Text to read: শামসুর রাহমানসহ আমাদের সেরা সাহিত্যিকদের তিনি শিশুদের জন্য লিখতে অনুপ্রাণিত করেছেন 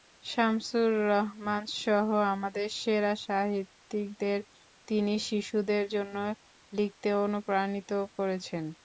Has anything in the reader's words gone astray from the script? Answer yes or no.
no